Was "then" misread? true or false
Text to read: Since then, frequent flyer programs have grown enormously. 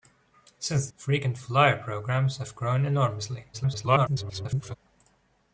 true